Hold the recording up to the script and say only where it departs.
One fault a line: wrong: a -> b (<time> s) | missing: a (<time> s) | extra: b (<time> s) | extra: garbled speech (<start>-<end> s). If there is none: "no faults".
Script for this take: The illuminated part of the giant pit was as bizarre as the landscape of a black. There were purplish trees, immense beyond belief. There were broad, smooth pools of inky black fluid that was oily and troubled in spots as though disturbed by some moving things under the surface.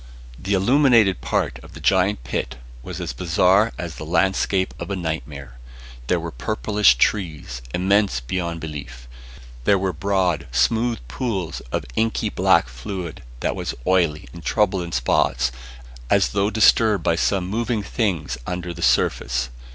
wrong: black -> nightmare (4.9 s)